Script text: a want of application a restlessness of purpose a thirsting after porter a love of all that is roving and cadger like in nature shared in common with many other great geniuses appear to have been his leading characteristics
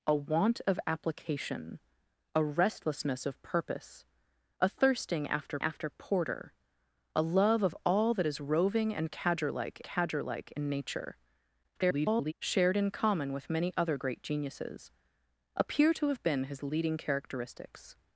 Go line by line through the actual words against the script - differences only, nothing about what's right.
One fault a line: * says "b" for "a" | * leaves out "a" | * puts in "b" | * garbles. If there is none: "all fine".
* puts in "after"
* puts in "cadger like"
* garbles